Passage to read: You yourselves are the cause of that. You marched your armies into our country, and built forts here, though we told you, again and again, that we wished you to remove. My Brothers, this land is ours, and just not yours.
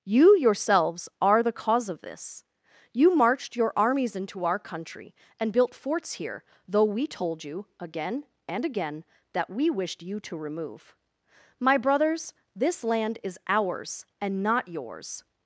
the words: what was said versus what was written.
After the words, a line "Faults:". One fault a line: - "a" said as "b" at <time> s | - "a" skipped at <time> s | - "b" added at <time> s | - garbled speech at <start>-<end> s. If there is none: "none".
You yourselves are the cause of this. You marched your armies into our country, and built forts here, though we told you, again and again, that we wished you to remove. My Brothers, this land is ours, and not yours.
Faults:
- "that" said as "this" at 2.0 s
- "just" skipped at 14.4 s